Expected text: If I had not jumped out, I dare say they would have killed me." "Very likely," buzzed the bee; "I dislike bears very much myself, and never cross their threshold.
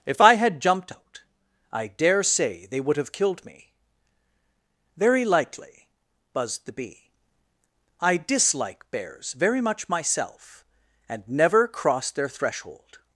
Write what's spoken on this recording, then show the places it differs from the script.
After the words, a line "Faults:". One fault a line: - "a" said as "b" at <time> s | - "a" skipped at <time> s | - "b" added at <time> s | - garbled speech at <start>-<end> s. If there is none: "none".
If I had jumped out, I dare say they would have killed me." "Very likely," buzzed the bee; "I dislike bears very much myself, and never cross their threshold.
Faults:
- "not" skipped at 0.6 s